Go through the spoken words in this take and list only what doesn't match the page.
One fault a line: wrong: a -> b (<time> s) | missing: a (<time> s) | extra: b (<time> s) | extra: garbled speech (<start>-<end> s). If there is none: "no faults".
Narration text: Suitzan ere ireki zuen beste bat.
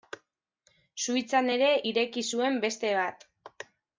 no faults